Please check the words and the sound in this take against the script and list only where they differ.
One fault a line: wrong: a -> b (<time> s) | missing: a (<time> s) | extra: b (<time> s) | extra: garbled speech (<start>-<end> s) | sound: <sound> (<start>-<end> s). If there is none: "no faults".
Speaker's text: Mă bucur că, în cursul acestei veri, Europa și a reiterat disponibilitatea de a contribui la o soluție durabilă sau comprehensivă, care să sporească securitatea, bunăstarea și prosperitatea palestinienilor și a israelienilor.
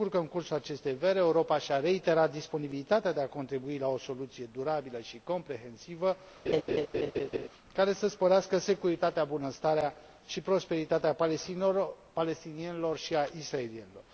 wrong: sau -> și (5.0 s)
sound: laugh (6.5-7.5 s)